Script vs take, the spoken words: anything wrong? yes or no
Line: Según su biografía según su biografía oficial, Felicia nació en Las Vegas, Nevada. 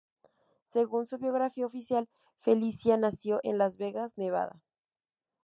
yes